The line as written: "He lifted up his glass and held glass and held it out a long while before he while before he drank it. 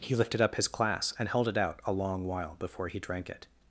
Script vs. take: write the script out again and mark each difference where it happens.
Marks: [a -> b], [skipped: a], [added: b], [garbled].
"He lifted up his glass and held [skipped: glass and held] it out a long while before he [skipped: while before he] drank it.